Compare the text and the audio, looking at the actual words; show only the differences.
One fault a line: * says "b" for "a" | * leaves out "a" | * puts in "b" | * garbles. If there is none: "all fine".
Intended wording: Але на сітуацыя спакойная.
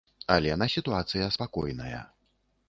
all fine